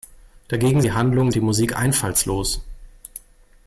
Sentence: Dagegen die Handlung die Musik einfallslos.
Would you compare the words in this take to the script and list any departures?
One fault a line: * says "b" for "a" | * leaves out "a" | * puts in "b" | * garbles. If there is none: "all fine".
all fine